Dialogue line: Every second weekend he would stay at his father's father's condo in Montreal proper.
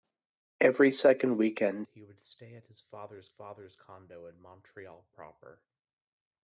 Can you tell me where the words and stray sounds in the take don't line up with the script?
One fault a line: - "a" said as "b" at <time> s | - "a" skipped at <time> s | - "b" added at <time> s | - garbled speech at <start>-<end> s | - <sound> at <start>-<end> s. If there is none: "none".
none